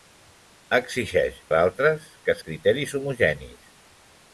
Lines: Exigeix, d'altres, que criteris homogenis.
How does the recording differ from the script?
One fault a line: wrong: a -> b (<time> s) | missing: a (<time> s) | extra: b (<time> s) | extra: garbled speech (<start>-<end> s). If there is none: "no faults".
no faults